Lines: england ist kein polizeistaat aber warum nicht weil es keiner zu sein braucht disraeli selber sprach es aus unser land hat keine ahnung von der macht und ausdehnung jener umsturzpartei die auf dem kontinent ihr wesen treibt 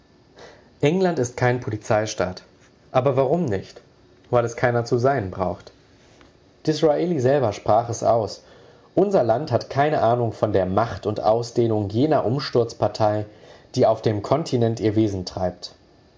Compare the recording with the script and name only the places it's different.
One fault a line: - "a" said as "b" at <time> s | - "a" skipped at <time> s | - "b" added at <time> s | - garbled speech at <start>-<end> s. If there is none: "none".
none